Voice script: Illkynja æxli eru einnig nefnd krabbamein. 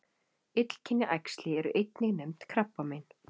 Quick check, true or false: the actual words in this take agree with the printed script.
true